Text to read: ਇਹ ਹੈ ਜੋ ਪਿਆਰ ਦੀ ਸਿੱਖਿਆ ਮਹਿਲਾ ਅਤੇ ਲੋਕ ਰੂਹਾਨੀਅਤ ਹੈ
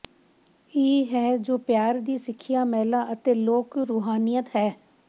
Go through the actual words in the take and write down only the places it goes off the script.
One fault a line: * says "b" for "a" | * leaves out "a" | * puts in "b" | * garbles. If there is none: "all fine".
all fine